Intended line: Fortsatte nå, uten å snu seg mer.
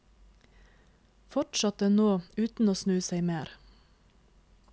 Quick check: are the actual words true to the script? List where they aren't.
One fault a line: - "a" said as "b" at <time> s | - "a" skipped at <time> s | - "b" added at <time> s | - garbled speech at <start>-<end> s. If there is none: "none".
none